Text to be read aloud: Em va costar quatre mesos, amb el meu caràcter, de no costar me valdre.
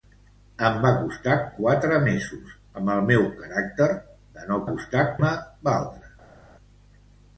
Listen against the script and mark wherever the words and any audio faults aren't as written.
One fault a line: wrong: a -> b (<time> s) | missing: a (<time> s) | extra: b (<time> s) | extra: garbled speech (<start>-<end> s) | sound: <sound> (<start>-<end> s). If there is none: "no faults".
no faults